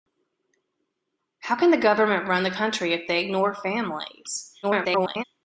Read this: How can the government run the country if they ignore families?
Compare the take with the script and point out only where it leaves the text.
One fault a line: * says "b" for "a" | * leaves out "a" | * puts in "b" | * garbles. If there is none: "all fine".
* garbles